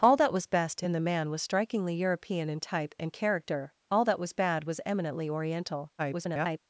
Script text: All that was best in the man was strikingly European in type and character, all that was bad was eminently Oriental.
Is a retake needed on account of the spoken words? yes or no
yes